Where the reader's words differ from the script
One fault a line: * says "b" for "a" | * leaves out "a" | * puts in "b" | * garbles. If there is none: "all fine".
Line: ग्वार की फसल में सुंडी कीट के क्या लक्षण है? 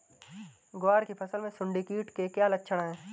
all fine